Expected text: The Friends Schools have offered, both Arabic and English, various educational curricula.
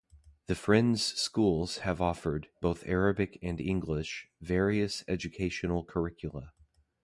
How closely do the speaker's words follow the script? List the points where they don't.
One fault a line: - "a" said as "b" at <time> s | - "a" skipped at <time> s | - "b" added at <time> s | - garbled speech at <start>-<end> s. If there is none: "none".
none